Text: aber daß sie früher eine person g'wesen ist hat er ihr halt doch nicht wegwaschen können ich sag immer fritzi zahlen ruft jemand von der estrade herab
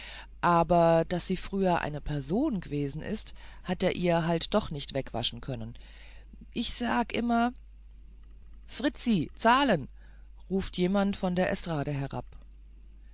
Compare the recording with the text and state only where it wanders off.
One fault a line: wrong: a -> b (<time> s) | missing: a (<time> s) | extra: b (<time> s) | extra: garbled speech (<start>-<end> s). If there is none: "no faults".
no faults